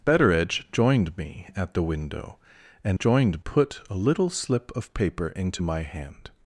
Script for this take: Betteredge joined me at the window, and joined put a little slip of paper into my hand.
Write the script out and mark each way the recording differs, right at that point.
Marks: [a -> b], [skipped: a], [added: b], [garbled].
Betteredge joined me at the window, and joined put a little slip of paper into my hand.